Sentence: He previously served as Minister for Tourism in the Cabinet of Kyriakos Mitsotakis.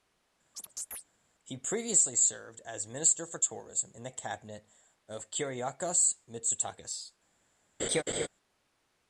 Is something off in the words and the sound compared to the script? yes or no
yes